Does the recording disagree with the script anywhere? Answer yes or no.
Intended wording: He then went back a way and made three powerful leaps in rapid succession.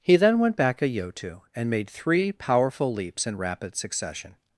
yes